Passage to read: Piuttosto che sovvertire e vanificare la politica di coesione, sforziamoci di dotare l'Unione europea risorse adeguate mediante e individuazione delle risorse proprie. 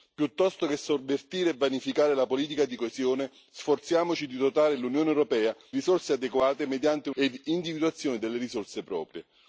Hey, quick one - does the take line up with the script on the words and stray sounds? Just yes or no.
yes